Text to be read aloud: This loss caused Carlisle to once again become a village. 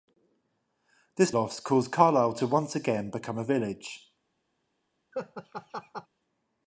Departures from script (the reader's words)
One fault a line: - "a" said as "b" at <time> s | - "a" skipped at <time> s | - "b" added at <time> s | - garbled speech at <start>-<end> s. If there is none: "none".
none